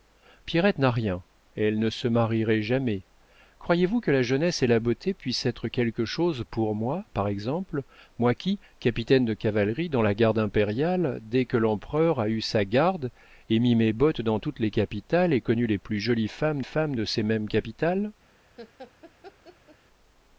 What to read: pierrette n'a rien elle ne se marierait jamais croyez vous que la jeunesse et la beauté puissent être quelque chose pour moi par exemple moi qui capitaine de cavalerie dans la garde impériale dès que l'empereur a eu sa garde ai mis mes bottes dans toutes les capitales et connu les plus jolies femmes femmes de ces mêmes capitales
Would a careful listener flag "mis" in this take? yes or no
no